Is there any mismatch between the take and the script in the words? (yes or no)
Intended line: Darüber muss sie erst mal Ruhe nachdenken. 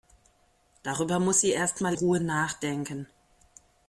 no